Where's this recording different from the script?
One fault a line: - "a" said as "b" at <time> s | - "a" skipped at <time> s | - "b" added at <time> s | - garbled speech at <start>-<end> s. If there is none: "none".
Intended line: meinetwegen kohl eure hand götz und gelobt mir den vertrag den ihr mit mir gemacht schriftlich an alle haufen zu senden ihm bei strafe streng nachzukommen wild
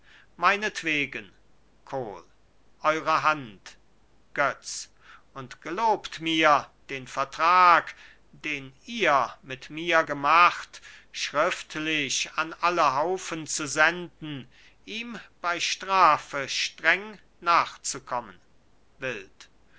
none